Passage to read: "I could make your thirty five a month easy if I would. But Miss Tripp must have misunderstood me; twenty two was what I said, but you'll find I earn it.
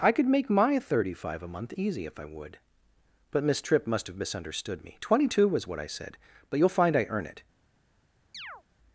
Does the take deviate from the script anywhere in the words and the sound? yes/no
yes